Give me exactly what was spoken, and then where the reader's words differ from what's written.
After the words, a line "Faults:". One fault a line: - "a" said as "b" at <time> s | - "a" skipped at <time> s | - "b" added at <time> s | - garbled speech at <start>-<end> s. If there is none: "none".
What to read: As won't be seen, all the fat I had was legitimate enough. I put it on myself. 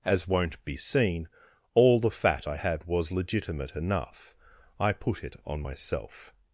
As won't be seen, all the fat I had was legitimate enough. I put it on myself.
Faults:
none